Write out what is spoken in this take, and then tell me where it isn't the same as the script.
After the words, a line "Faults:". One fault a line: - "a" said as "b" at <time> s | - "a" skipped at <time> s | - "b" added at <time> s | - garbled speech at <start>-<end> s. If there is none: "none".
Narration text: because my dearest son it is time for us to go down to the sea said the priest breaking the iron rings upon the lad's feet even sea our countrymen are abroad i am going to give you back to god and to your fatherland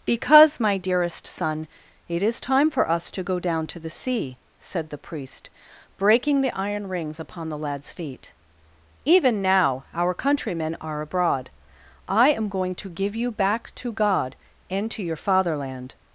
because my dearest son it is time for us to go down to the sea said the priest breaking the iron rings upon the lad's feet even now our countrymen are abroad i am going to give you back to god and to your fatherland
Faults:
- "sea" said as "now" at 9.4 s